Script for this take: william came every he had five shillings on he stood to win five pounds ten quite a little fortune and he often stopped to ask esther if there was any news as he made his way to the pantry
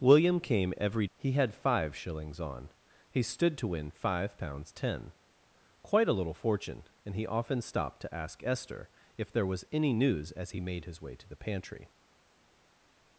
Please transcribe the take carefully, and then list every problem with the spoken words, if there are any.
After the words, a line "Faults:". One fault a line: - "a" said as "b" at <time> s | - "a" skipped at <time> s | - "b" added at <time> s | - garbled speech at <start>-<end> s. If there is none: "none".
william came every he had five shillings on he stood to win five pounds ten quite a little fortune and he often stopped to ask esther if there was any news as he made his way to the pantry
Faults:
none